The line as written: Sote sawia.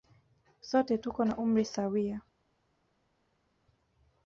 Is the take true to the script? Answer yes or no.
no